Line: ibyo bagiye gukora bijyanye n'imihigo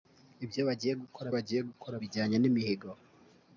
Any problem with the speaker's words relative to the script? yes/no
yes